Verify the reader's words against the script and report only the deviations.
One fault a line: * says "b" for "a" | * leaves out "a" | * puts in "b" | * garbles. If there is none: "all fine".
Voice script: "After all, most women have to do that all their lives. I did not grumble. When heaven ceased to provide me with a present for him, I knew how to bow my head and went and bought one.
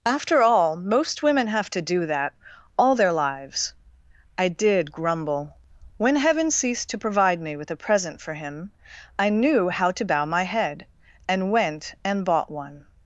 * leaves out "not"